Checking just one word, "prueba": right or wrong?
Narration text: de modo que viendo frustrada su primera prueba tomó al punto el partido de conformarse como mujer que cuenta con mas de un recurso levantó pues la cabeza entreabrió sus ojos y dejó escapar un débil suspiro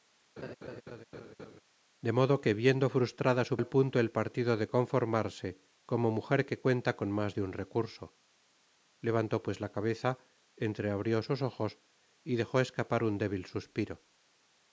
wrong